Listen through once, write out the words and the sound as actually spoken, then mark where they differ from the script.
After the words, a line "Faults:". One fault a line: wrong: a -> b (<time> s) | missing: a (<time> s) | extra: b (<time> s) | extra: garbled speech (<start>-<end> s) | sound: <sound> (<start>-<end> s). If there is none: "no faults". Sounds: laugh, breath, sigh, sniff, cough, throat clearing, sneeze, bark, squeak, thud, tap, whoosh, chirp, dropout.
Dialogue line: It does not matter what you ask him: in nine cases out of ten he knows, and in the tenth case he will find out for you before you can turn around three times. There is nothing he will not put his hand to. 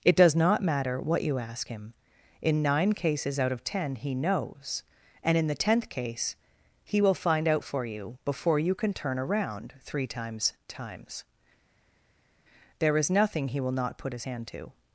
It does not matter what you ask him: in nine cases out of ten he knows, and in the tenth case he will find out for you before you can turn around three times times. There is nothing he will not put his hand to.
Faults:
extra: times (10.7 s)